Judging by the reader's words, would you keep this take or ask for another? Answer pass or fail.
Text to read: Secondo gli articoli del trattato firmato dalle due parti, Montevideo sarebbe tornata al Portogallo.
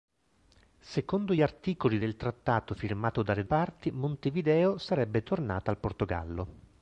fail